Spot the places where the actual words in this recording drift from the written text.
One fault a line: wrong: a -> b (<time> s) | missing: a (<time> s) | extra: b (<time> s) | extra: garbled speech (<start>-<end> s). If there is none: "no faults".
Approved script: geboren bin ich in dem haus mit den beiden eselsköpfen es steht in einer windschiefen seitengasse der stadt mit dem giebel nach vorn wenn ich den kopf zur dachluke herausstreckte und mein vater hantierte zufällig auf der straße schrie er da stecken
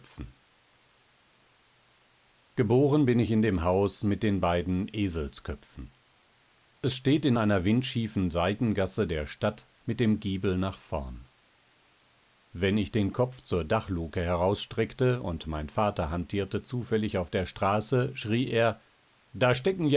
no faults